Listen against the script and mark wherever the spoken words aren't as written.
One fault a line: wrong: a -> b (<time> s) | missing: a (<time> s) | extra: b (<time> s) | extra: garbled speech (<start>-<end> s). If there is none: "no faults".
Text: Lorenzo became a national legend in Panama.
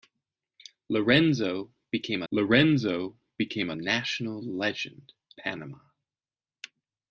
extra: lorenzo became (2.3 s)
missing: in (5.1 s)